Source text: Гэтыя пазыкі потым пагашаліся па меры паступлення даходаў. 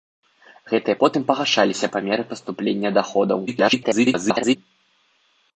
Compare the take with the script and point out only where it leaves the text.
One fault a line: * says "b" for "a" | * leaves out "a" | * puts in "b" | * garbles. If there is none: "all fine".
* leaves out "пазыкі"
* garbles